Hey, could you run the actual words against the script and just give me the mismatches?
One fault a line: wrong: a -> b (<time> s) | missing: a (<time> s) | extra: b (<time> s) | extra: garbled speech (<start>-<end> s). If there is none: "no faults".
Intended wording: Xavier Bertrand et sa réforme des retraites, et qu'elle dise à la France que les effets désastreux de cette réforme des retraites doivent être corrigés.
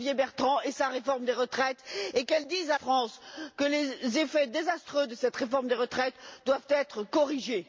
missing: la (2.8 s)